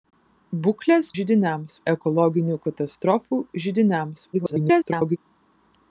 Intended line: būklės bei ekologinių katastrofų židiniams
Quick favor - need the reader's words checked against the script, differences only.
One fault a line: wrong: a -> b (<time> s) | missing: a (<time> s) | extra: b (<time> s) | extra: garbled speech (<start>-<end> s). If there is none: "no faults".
wrong: bei -> židiniams (1.2 s)
extra: garbled speech (4.3-5.2 s)